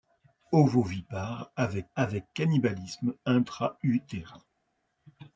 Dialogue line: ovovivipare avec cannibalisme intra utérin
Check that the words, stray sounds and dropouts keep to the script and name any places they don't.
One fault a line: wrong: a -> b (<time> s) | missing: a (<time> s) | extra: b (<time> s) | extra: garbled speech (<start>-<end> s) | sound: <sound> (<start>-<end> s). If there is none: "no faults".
extra: avec (1.9 s)